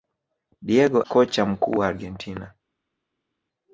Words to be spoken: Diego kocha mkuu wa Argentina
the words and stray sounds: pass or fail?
pass